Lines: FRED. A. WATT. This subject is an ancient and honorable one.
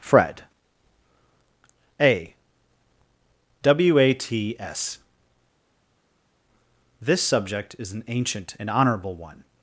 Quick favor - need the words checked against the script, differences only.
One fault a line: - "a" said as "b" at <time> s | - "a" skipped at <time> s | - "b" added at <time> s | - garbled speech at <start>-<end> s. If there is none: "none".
- "WATT" said as "W a t s" at 3.6 s